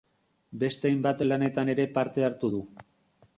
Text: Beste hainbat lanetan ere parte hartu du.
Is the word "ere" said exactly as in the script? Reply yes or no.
yes